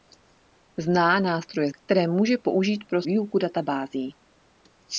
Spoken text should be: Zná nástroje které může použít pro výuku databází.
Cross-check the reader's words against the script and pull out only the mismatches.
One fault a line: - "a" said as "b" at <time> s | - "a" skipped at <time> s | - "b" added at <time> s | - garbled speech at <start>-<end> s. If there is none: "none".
none